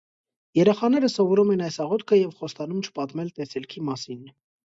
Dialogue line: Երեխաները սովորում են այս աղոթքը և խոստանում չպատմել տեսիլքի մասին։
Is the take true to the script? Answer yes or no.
yes